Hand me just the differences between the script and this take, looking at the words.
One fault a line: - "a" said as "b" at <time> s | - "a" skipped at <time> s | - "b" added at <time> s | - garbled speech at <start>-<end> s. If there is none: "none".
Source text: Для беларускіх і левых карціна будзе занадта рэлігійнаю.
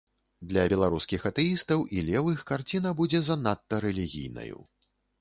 - "атэістаў" added at 1.3 s